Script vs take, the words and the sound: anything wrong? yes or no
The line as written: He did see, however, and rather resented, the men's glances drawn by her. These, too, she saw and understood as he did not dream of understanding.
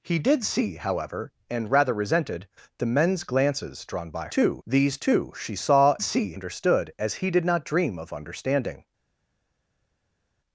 yes